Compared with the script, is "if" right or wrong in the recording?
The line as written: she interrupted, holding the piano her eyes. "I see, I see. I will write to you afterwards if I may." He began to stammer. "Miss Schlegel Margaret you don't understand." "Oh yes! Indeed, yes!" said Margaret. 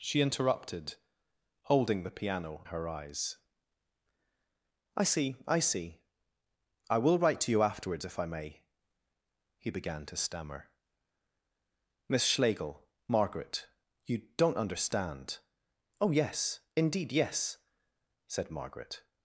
right